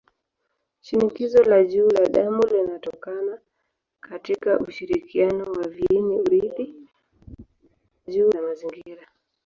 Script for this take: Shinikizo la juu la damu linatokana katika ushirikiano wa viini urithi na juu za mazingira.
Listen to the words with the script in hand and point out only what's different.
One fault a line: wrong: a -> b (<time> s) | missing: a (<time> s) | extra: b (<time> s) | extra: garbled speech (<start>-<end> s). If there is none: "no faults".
no faults